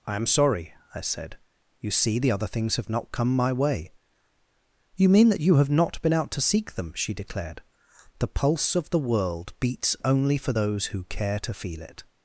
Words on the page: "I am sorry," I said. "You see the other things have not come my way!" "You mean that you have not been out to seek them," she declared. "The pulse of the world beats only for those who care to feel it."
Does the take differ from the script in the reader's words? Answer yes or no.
no